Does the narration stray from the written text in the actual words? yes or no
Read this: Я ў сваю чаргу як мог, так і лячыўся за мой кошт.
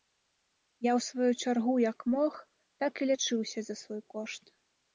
yes